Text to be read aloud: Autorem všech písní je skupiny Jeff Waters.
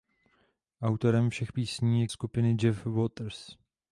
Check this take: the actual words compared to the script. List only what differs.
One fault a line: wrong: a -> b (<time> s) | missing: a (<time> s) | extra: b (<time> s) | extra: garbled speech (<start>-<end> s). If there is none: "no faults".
no faults